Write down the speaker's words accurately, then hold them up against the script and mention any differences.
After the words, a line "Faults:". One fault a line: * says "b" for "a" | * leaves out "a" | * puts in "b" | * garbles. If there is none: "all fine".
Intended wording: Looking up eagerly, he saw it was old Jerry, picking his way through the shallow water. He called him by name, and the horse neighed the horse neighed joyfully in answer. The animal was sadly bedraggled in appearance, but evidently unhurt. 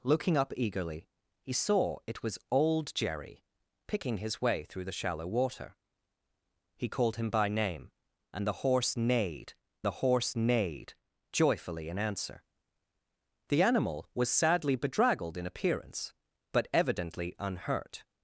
Looking up eagerly, he saw it was old Jerry, picking his way through the shallow water. He called him by name, and the horse neighed the horse neighed joyfully in answer. The animal was sadly bedraggled in appearance, but evidently unhurt.
Faults:
all fine